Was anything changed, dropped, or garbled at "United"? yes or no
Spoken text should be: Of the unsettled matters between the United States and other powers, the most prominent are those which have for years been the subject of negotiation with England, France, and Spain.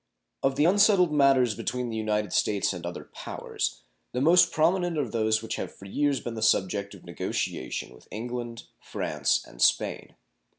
no